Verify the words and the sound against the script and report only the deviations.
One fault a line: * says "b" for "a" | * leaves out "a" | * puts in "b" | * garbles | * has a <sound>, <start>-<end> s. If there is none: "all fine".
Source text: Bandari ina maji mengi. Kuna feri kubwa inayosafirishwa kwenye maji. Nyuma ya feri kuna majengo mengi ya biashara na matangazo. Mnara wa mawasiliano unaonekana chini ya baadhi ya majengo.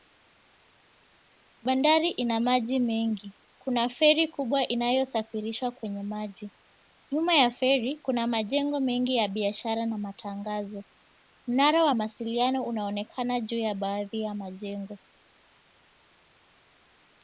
* says "juu" for "chini"